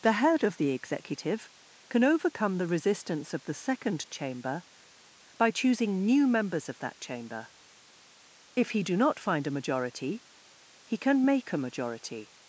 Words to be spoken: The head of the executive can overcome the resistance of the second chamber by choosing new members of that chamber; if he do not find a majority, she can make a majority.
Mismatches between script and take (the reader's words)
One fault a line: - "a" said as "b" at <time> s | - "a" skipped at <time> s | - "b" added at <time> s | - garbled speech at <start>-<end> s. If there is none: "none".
- "she" said as "he" at 10.8 s